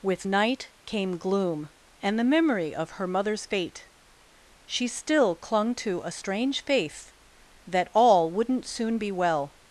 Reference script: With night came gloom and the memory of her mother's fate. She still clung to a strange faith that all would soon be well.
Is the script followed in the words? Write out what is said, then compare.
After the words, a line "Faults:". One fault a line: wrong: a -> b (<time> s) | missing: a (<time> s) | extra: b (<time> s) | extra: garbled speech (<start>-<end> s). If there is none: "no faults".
With night came gloom and the memory of her mother's fate. She still clung to a strange faith that all wouldn't soon be well.
Faults:
wrong: would -> wouldn't (8.3 s)